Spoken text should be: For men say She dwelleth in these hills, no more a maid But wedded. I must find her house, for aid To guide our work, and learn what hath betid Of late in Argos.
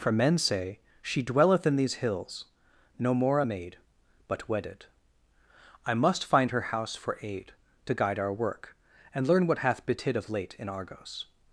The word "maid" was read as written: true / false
true